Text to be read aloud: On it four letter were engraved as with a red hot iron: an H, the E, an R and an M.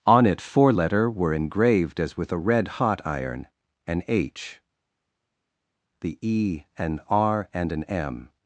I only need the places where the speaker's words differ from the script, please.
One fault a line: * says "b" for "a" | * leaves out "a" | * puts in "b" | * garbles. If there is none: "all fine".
all fine